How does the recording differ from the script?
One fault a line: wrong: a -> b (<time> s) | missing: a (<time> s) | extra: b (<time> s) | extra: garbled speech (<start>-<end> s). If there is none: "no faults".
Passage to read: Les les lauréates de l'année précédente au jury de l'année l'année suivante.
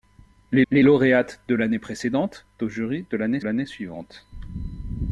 no faults